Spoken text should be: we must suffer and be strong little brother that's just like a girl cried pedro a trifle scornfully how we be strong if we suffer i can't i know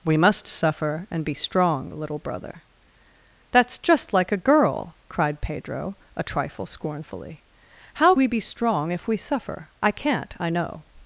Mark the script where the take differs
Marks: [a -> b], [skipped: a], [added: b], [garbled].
we must suffer and be strong little brother that's just like a girl cried pedro a trifle scornfully how we be strong if we suffer i can't i know